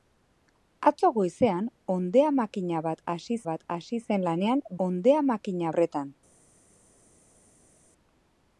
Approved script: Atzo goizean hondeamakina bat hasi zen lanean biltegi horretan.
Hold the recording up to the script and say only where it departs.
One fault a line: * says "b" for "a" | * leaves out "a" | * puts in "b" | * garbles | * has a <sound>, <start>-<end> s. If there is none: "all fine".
* puts in "bat hasi"
* says "hondeamakina" for "biltegi"